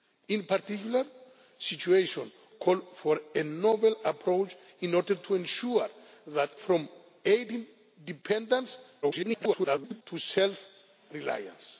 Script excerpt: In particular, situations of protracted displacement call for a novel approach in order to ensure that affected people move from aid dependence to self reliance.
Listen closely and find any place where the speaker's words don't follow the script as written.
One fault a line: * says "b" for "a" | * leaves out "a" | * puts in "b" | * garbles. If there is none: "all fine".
* leaves out "of protracted displacement"
* leaves out "affected people move"
* garbles